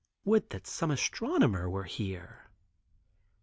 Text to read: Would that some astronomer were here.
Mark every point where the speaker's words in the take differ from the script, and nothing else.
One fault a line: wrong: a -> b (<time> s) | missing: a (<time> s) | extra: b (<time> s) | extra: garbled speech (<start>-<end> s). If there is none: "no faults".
no faults